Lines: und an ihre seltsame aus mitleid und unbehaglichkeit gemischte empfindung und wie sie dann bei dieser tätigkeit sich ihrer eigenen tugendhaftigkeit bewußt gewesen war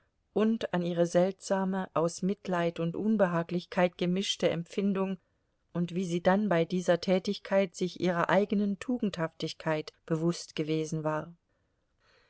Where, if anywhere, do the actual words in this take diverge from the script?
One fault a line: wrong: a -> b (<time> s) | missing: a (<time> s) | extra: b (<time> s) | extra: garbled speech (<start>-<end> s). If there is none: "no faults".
no faults